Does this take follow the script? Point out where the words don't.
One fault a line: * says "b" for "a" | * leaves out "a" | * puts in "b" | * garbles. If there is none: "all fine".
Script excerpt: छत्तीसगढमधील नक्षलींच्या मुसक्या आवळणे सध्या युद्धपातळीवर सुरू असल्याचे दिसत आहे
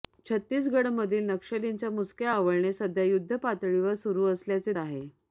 * leaves out "दिसत"